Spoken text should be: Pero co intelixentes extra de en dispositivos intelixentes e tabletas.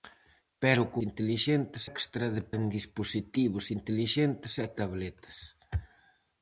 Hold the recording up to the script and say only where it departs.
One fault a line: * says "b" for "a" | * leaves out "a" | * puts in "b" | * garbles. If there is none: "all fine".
all fine